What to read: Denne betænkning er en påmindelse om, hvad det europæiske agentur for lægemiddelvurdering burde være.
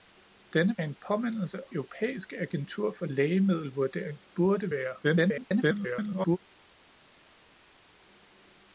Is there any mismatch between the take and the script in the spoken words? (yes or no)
yes